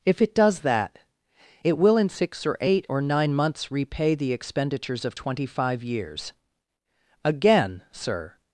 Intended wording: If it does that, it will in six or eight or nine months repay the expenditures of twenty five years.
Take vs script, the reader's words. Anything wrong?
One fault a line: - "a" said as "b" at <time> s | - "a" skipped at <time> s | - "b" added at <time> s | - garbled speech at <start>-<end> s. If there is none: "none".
- "Again Sir" added at 7.2 s